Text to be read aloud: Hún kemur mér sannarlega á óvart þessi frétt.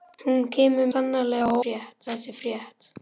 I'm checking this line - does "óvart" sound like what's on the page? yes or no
no